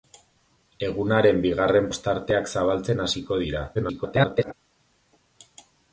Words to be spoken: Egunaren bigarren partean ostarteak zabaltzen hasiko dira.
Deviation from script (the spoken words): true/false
true